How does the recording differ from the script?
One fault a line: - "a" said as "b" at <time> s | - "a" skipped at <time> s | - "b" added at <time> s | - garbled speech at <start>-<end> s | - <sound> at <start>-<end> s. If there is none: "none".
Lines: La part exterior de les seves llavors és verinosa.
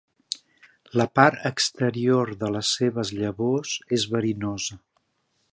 none